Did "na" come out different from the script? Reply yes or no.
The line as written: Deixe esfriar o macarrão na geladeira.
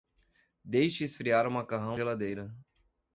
yes